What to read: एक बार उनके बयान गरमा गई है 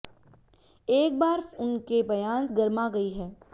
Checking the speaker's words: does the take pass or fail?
pass